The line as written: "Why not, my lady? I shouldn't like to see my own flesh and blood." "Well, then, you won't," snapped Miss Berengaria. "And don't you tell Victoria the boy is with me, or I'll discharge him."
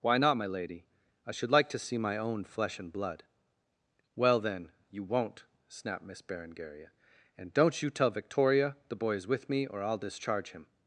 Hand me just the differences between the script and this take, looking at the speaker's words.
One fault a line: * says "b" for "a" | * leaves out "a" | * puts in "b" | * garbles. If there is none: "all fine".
* says "should" for "shouldn't"